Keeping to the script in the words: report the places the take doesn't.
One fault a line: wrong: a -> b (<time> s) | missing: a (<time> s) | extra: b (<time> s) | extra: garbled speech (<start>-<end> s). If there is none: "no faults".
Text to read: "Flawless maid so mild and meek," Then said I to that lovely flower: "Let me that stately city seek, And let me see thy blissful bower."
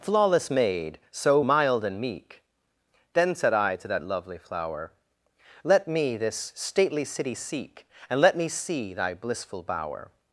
wrong: that -> this (6.2 s)